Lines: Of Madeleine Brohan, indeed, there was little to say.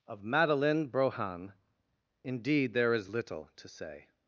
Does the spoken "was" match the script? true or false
false